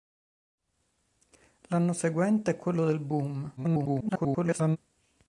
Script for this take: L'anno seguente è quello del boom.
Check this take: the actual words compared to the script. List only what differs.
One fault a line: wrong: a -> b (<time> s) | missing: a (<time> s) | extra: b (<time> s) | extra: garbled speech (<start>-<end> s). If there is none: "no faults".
extra: garbled speech (3.6-4.8 s)